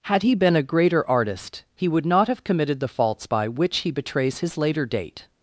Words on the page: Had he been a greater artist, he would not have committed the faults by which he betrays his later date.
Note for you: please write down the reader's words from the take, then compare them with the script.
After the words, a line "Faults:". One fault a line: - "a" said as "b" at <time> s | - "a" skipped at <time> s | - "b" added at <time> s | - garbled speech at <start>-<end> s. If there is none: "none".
Had he been a greater artist, he would not have committed the faults by which he betrays his later date.
Faults:
none